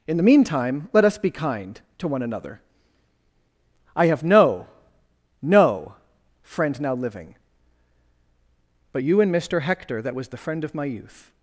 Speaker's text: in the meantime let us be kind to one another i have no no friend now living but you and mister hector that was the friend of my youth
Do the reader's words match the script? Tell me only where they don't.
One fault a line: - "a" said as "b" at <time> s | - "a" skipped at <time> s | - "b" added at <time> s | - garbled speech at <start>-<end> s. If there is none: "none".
none